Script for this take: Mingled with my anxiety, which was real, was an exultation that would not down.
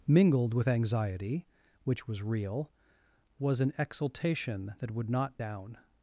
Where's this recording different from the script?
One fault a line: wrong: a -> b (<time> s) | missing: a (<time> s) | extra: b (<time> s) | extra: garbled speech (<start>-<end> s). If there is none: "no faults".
missing: my (0.7 s)